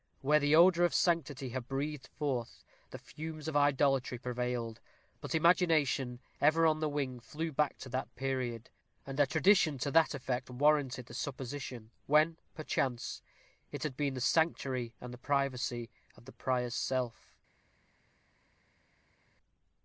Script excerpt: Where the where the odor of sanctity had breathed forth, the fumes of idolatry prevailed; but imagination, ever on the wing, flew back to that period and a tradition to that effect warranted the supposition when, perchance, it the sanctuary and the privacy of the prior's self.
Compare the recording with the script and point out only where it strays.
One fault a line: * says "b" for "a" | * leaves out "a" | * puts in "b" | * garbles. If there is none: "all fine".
* leaves out "where the"
* puts in "had been"